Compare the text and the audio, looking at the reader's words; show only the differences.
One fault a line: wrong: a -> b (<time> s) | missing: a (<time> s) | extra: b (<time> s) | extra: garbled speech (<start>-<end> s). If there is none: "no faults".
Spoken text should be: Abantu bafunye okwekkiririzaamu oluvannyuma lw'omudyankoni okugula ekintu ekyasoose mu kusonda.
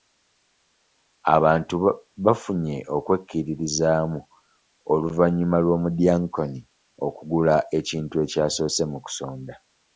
no faults